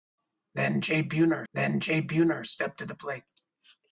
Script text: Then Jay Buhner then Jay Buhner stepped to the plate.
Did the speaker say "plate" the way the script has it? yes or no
yes